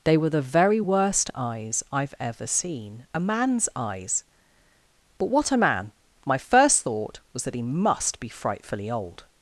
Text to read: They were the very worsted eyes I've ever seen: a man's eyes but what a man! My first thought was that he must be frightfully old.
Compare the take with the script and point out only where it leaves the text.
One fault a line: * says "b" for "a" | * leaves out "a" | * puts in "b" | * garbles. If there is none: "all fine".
* says "worst" for "worsted"